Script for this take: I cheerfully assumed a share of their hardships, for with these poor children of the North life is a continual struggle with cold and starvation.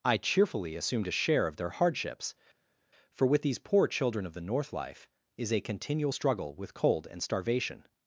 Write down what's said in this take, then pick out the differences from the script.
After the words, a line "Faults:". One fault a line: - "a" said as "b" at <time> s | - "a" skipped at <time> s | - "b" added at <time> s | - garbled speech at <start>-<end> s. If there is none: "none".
I cheerfully assumed a share of their hardships, for with these poor children of the North life is a continual struggle with cold and starvation.
Faults:
none